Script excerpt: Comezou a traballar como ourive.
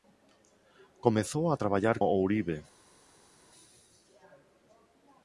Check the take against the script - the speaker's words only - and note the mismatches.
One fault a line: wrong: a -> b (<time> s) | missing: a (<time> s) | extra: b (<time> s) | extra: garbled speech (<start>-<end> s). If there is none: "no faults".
missing: como (2.0 s)